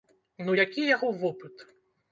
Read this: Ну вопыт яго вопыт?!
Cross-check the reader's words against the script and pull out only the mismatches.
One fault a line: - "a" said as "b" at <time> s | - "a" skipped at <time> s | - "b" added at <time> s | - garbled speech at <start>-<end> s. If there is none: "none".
- "вопыт" said as "які" at 0.6 s